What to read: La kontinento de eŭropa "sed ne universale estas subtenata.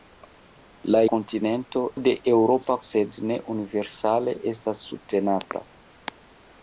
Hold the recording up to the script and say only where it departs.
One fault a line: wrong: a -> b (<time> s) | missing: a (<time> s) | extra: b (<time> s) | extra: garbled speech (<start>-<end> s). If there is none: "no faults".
no faults